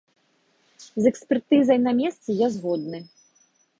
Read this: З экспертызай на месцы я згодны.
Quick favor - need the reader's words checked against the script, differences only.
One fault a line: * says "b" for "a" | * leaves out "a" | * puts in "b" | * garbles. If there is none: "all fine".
all fine